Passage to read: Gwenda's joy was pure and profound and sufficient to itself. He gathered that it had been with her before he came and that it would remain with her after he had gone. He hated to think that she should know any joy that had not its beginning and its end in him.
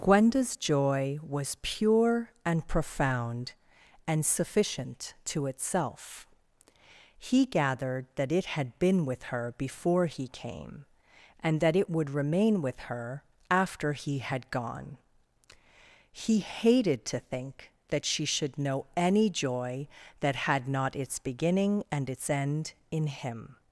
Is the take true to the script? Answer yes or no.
yes